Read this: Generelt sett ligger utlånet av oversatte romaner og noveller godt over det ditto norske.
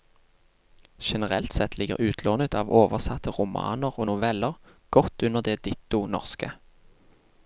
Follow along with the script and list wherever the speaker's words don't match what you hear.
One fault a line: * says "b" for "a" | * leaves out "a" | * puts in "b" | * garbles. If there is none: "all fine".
* says "under" for "over"